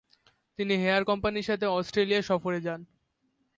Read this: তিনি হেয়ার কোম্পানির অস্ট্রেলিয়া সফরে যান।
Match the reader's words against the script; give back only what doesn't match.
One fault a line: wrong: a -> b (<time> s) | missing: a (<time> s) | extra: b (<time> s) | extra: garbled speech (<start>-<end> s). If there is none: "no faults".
extra: সাথে (1.5 s)